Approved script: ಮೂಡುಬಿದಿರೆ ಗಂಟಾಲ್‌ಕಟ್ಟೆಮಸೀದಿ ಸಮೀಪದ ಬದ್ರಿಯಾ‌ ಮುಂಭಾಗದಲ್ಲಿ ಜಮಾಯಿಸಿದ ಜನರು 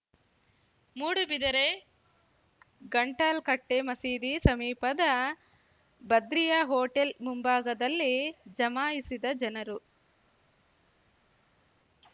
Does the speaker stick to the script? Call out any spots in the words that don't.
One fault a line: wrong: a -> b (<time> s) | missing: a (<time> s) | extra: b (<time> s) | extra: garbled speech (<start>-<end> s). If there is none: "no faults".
extra: ಹೋಟೆಲ್ (6.7 s)